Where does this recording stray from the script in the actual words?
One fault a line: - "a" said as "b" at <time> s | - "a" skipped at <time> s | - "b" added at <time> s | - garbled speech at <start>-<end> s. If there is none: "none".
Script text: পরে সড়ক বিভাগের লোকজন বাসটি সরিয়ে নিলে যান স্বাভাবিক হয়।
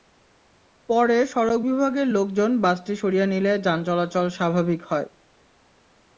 - "চলাচল" added at 3.9 s